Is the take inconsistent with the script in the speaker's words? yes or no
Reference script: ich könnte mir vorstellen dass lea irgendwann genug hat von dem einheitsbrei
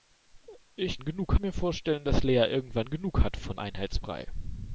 yes